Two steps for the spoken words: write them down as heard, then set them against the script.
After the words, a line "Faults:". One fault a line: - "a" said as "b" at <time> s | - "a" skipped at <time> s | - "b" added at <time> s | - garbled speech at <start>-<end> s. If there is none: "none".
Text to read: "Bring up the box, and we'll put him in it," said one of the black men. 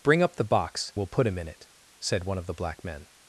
"Bring up the box, we'll put him in it," said one of the black men.
Faults:
- "and" skipped at 0.9 s